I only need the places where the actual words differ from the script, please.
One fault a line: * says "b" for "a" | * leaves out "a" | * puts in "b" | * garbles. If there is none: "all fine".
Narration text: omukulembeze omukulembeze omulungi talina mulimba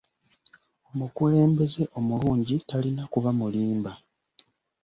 * leaves out "omukulembeze"
* puts in "kuba"